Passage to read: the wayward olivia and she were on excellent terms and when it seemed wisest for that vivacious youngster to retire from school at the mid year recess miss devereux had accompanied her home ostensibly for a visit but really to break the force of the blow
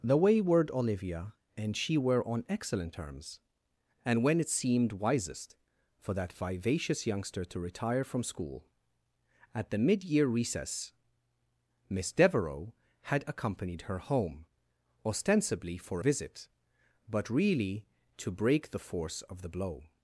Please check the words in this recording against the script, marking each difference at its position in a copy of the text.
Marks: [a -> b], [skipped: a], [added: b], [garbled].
the wayward olivia and she were on excellent terms and when it seemed wisest for that vivacious youngster to retire from school at the mid year recess miss devereux had accompanied her home ostensibly for [skipped: a] visit but really to break the force of the blow